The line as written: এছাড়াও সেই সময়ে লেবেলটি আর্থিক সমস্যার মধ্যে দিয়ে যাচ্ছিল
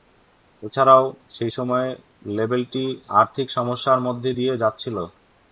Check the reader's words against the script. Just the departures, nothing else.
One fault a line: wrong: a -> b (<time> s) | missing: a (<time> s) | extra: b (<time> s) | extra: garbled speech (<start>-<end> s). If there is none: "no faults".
no faults